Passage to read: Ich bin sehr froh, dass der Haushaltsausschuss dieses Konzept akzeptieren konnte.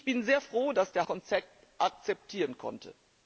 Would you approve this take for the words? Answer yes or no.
no